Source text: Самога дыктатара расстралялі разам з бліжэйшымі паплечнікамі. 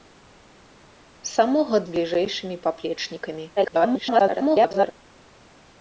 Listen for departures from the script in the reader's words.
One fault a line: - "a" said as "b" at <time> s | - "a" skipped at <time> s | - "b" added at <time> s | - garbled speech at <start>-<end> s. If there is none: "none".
- "дыктатара расстралялі разам" skipped at 1.8 s
- garbled speech at 3.6-4.9 s